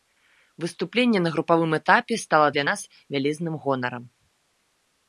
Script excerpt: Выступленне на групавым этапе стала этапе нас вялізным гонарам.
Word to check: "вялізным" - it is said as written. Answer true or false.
true